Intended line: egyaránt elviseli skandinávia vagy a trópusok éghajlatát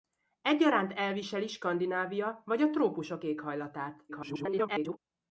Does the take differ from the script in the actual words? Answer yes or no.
yes